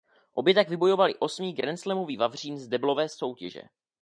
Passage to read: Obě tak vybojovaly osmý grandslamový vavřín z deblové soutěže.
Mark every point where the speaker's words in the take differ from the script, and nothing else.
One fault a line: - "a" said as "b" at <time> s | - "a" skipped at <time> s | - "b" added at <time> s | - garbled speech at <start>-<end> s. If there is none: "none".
none